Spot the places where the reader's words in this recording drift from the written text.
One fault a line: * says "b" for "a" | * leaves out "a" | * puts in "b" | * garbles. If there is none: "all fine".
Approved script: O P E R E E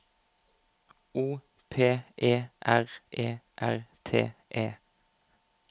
* puts in "R T"